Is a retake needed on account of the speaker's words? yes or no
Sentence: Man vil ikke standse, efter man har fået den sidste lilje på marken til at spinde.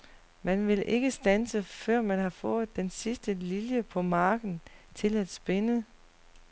yes